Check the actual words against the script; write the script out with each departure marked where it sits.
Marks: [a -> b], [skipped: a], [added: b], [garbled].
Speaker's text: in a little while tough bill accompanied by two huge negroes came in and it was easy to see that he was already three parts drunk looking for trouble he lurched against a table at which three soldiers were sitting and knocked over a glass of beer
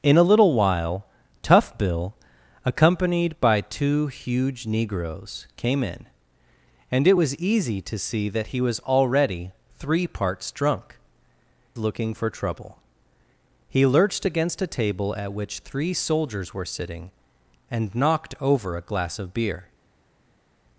in a little while tough bill accompanied by two huge negroes came in and it was easy to see that he was already three parts drunk looking for trouble he lurched against a table at which three soldiers were sitting and knocked over a glass of beer